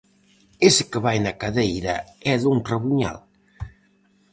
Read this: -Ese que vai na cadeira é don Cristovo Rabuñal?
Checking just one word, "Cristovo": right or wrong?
wrong